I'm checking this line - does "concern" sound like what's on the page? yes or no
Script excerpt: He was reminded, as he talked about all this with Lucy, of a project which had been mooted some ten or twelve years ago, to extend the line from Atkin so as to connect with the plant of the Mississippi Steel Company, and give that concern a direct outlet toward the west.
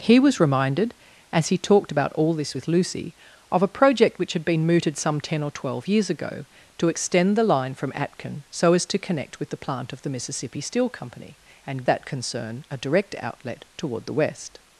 yes